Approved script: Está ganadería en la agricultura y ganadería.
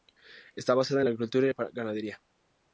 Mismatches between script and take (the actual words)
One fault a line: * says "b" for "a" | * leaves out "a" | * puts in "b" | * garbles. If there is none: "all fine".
* says "basada" for "ganadería"